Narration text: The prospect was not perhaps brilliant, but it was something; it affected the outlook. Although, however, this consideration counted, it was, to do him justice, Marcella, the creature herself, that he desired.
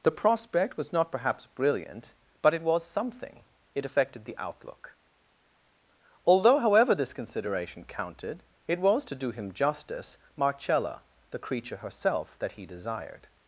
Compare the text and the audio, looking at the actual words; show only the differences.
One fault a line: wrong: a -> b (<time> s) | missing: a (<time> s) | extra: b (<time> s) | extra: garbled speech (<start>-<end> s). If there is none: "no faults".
no faults